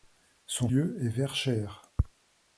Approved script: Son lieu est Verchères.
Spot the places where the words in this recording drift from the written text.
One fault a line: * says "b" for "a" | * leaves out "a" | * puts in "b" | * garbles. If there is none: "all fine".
all fine